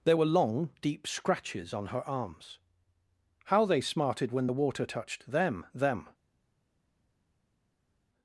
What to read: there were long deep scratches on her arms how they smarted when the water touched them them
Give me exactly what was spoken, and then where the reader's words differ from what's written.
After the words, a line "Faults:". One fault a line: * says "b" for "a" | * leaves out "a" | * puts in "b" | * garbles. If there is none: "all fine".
there were long deep scratches on her arms how they smarted when the water touched them them
Faults:
all fine